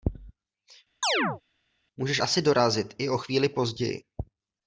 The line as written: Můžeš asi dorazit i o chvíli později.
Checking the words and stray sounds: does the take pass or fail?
fail